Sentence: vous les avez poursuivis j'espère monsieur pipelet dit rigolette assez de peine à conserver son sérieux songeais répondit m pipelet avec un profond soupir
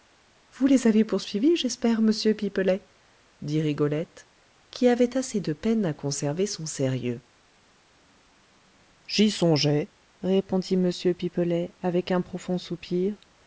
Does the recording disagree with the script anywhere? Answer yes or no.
yes